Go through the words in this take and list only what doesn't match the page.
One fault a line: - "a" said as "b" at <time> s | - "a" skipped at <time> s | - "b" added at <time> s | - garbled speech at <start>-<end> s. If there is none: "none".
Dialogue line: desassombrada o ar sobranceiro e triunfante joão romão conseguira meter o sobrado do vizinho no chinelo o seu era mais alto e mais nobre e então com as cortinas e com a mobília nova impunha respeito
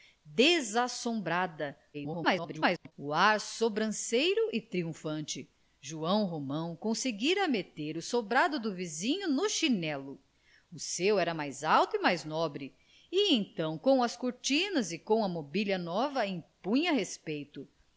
- garbled speech at 1.9-2.9 s